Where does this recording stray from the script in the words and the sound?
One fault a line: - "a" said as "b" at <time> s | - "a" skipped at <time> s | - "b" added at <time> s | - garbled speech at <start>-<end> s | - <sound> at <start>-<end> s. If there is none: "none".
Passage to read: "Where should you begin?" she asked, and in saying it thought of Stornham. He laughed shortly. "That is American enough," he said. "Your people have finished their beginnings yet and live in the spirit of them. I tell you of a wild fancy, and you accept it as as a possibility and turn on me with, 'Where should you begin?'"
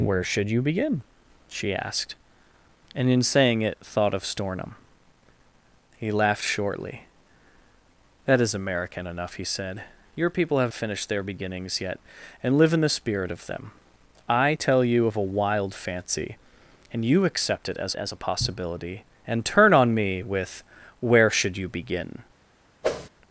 - whoosh at 22.8-23.1 s